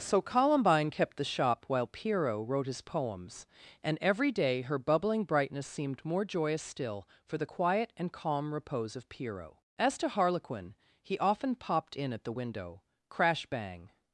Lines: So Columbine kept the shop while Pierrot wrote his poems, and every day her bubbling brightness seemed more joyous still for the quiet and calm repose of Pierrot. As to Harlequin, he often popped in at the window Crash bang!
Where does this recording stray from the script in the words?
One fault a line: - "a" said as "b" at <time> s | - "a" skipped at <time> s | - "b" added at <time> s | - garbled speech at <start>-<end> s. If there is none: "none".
none